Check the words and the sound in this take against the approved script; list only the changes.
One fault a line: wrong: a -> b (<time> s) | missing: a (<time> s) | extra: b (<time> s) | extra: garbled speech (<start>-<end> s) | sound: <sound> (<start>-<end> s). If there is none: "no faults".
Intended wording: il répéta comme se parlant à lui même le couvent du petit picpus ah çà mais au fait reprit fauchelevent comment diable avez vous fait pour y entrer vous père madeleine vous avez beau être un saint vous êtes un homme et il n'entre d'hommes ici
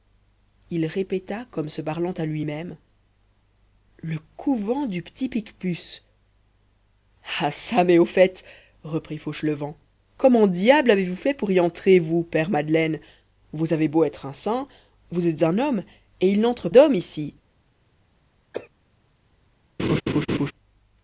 sound: cough (18.5-18.7 s)
sound: laugh (19.8-20.5 s)